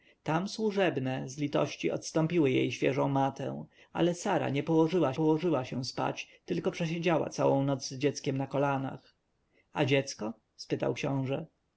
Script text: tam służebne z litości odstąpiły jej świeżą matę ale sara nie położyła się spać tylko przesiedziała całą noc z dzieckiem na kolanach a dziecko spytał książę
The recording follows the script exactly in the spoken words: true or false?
false